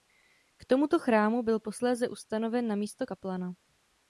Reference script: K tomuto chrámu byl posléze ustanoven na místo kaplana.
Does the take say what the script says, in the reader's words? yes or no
yes